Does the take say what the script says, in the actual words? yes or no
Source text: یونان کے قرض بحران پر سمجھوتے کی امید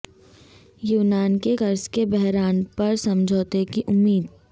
no